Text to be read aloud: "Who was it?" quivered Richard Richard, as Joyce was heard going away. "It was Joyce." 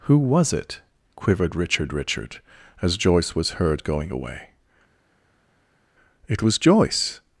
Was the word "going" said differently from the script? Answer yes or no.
no